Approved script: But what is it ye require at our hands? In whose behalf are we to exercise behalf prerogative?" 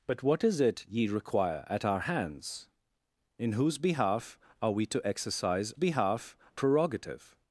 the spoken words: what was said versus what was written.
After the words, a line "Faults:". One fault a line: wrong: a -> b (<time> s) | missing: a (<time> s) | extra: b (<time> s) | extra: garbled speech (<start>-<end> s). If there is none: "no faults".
But what is it ye require at our hands? In whose behalf are we to exercise behalf prerogative?"
Faults:
no faults